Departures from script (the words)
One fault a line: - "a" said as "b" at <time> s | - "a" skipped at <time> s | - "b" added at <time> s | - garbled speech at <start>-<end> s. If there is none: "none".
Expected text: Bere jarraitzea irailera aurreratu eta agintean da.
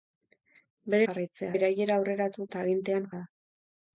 none